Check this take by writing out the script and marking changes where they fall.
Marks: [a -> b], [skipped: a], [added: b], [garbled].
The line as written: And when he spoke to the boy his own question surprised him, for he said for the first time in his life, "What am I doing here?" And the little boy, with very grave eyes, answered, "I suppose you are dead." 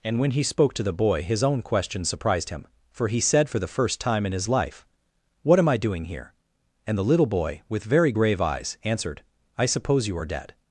And when he spoke to the boy his own question surprised him, for he said for the first time in his life, "What am I doing here?" And the little boy, with very grave eyes, answered, "I suppose you are dead."